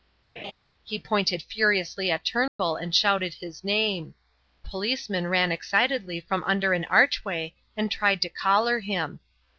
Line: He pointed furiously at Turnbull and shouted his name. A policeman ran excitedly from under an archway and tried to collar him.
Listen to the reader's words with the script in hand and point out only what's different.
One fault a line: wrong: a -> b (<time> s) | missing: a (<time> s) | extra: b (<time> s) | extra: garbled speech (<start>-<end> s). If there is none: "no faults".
missing: A (4.1 s)